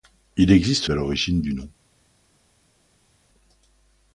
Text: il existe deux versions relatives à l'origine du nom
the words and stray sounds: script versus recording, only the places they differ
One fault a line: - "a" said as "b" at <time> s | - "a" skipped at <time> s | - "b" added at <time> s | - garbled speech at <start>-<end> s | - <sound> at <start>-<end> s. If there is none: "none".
- "deux versions relatives" skipped at 0.9 s